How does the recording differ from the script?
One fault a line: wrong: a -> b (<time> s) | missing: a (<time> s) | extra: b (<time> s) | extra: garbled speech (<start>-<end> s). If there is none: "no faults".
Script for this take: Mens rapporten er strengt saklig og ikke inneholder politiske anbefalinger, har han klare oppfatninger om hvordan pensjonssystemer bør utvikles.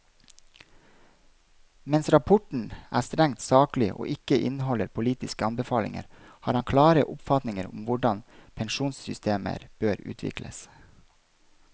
no faults